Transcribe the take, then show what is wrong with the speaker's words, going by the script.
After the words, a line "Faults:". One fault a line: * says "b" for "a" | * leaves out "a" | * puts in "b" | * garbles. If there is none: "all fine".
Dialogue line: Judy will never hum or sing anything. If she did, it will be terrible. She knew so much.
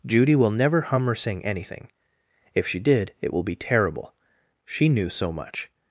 Judy will never hum or sing anything. If she did, it will be terrible. She knew so much.
Faults:
all fine